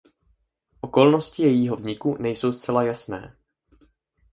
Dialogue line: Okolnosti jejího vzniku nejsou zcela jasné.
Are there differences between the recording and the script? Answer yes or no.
no